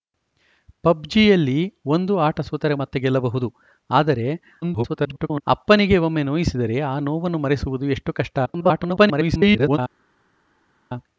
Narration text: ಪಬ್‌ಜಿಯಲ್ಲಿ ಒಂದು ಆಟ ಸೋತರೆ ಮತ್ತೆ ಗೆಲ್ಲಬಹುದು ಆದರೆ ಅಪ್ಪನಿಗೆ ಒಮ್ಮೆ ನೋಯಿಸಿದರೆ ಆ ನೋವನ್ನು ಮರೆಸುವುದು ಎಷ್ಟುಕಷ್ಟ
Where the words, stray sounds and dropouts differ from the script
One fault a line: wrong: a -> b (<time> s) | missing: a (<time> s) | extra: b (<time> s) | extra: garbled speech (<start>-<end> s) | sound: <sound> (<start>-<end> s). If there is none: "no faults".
extra: garbled speech (4.6-5.4 s)
extra: garbled speech (8.5-9.8 s)